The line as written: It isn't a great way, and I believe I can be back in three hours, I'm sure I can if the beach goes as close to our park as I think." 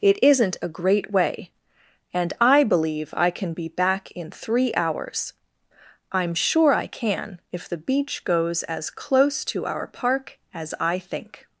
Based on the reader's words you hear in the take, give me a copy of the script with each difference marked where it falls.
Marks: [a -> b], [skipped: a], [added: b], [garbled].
It isn't a great way, and I believe I can be back in three hours, I'm sure I can if the beach goes as close to our park as I think."